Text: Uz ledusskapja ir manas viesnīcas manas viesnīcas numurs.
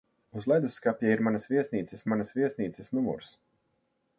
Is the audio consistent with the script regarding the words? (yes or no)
yes